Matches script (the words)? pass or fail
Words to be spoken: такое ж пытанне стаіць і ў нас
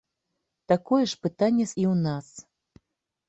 fail